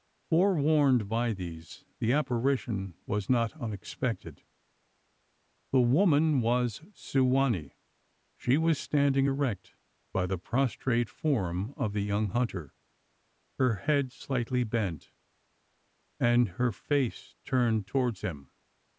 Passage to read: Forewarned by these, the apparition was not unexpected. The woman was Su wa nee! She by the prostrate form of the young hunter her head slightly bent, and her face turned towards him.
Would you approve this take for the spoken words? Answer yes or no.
no